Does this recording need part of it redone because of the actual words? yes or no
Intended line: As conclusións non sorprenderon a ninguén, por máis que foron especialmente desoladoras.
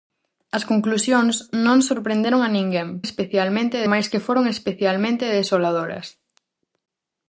yes